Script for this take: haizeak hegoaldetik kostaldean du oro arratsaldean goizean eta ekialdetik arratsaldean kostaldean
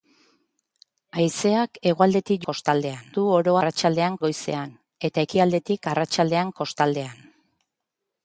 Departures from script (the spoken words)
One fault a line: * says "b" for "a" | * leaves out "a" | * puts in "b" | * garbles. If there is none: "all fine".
all fine